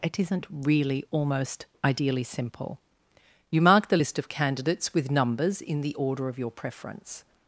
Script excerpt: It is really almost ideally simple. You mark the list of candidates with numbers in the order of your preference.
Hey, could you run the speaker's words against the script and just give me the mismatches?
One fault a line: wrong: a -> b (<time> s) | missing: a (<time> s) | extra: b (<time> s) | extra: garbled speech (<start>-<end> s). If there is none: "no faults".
wrong: is -> isn't (0.2 s)